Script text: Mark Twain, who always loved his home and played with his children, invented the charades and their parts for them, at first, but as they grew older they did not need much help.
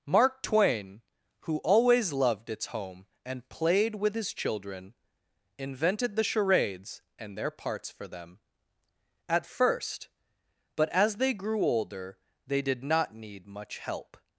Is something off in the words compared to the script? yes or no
yes